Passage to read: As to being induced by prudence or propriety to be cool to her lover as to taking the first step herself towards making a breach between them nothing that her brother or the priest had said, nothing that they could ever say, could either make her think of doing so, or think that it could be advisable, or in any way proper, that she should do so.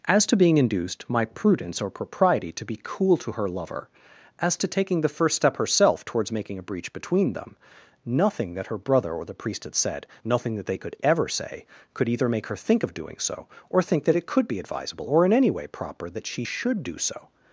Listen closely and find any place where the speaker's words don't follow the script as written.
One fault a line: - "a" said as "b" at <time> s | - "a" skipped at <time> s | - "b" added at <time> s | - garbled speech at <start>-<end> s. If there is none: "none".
- "by" said as "my" at 1.1 s